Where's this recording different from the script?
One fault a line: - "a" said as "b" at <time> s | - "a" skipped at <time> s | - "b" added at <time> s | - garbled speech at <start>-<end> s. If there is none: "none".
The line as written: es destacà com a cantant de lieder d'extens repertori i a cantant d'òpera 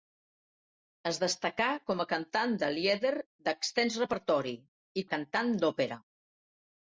none